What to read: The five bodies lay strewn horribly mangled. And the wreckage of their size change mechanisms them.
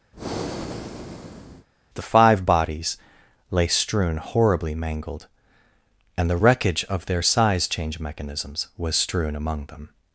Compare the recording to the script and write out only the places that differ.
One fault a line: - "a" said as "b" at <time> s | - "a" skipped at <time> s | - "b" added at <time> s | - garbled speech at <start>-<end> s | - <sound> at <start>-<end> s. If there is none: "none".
- breath at 0.1-1.7 s
- "was strewn among" added at 8.8 s